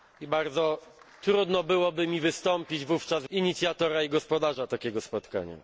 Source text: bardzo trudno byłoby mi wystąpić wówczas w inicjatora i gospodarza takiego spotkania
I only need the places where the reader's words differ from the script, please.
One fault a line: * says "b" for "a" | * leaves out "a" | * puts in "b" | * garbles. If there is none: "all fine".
all fine